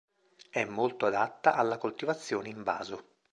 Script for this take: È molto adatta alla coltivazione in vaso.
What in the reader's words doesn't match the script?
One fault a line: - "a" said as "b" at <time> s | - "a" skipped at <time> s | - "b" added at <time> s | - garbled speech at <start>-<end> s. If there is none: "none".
none